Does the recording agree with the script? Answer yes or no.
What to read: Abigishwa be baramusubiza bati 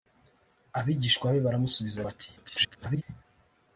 no